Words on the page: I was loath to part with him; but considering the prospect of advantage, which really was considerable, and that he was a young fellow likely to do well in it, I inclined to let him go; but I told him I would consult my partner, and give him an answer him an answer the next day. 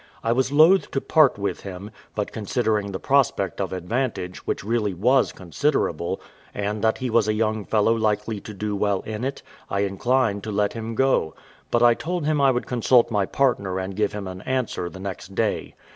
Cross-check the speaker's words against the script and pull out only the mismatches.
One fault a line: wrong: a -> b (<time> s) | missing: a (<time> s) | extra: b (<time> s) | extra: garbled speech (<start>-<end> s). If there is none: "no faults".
missing: him an answer (14.9 s)